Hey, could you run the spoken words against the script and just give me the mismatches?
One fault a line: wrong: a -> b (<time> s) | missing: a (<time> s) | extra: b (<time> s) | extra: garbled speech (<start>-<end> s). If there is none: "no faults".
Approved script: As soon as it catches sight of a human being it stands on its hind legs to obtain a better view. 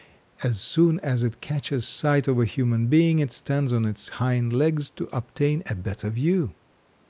no faults